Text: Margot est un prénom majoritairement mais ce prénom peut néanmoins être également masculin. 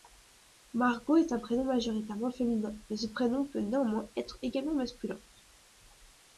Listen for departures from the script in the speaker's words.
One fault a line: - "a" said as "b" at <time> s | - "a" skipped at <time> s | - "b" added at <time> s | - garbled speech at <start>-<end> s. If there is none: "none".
- "féminin" added at 2.3 s